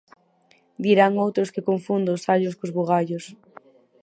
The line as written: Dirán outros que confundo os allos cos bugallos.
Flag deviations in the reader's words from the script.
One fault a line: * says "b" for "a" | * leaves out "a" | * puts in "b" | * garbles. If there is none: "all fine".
all fine